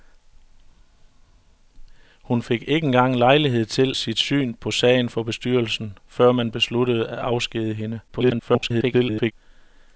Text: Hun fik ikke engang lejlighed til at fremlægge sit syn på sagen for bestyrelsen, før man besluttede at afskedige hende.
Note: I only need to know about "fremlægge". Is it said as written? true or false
false